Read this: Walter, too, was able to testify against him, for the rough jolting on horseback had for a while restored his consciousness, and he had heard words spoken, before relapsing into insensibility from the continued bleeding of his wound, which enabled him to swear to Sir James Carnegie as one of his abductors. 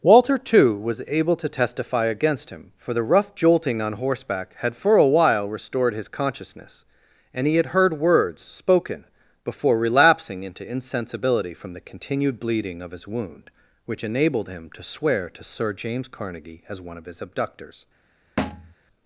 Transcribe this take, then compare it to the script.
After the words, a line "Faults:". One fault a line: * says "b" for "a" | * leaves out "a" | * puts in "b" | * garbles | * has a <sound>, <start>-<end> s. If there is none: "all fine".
Walter, too, was able to testify against him, for the rough jolting on horseback had for a while restored his consciousness, and he had heard words spoken, before relapsing into insensibility from the continued bleeding of his wound, which enabled him to swear to Sir James Carnegie as one of his abductors.
Faults:
* has a thud, 18.4-18.7 s